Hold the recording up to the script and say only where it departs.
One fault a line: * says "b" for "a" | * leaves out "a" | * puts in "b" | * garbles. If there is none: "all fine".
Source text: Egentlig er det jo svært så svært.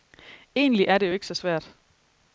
* says "ikke" for "svært"